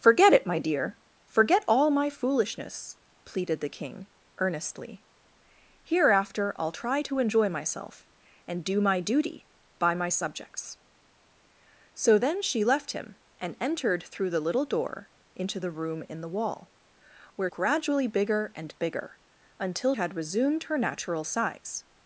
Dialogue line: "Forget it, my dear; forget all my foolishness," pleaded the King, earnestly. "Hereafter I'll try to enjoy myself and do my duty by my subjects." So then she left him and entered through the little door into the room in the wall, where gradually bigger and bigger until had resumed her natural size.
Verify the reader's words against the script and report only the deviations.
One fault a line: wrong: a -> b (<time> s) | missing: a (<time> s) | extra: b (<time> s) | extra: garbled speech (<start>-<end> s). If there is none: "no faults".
no faults